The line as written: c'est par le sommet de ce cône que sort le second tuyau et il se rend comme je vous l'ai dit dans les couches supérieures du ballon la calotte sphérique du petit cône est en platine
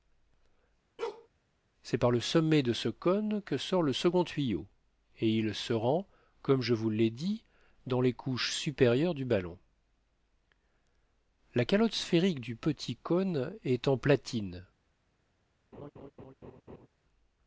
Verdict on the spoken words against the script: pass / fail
pass